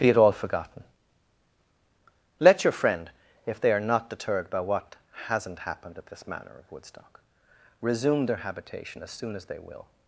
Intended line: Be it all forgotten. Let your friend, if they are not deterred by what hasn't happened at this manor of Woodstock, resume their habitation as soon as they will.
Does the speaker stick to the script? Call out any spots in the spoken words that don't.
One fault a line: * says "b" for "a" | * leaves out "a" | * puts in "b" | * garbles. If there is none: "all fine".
all fine